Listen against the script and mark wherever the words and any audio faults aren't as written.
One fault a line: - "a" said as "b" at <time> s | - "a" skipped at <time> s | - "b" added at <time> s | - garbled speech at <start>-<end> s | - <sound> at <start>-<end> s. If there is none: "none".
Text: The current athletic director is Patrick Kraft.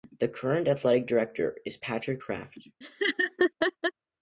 - laugh at 2.8-3.9 s